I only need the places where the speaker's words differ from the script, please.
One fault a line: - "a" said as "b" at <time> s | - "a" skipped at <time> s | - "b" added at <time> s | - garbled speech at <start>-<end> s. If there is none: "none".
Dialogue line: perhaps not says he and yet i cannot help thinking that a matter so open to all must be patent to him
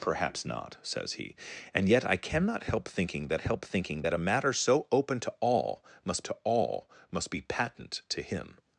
- "help thinking that" added at 3.4 s
- "to all must" added at 6.2 s